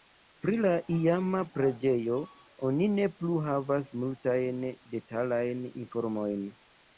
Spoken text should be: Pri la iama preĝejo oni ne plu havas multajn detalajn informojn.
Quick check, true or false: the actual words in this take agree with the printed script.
true